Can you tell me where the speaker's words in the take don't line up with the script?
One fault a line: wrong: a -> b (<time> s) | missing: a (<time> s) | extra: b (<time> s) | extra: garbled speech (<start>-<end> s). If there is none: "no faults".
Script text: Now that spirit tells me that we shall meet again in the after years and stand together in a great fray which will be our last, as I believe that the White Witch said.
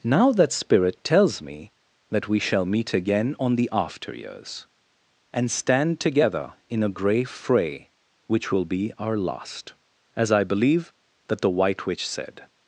wrong: in -> on (3.4 s)
wrong: great -> grey (6.9 s)